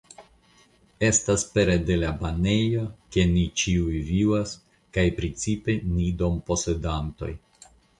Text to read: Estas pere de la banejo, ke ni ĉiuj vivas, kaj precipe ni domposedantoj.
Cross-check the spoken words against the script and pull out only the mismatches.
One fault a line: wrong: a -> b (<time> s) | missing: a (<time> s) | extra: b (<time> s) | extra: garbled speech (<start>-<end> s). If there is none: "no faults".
no faults